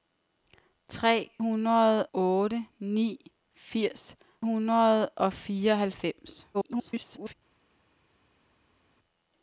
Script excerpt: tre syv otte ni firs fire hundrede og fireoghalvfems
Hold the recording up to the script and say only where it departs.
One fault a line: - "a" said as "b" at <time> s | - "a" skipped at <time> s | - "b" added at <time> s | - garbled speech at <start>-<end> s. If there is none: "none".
- "syv" said as "hundrede" at 1.4 s
- "fire" skipped at 4.2 s
- garbled speech at 6.5-7.3 s